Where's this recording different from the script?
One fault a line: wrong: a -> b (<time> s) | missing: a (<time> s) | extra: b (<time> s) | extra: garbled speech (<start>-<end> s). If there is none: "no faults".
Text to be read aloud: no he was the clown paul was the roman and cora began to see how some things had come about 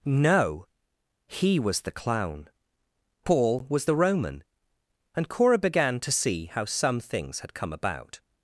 no faults